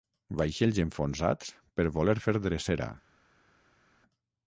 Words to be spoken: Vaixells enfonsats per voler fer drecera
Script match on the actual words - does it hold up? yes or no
yes